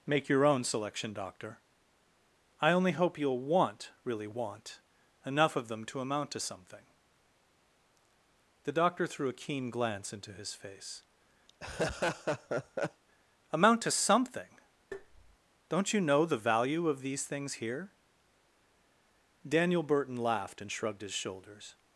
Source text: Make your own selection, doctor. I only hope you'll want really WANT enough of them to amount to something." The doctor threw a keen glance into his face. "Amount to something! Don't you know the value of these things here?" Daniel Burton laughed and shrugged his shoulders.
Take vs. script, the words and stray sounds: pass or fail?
fail